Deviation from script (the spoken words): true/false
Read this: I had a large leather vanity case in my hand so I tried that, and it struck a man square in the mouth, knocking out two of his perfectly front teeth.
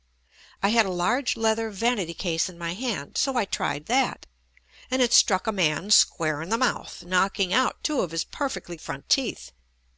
false